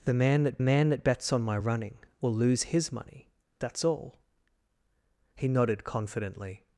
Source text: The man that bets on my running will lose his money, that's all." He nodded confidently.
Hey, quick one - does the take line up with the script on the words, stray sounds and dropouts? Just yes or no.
no